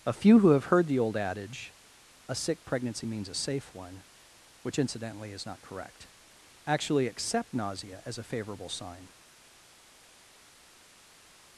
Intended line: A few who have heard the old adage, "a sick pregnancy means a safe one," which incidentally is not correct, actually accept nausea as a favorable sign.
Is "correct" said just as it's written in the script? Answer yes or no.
yes